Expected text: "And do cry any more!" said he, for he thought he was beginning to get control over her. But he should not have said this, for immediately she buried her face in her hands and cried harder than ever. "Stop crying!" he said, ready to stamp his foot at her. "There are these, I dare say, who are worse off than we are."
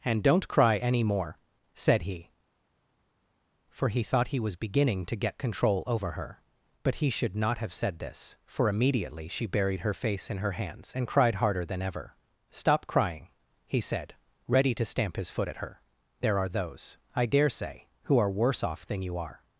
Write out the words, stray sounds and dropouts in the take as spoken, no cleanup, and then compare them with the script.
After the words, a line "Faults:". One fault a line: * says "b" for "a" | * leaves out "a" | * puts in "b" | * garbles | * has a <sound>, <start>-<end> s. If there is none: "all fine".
"And don't cry any more!" said he, for he thought he was beginning to get control over her. But he should not have said this, for immediately she buried her face in her hands and cried harder than ever. "Stop crying!" he said, ready to stamp his foot at her. "There are those, I dare say, who are worse off than you are."
Faults:
* says "don't" for "do"
* says "those" for "these"
* says "you" for "we"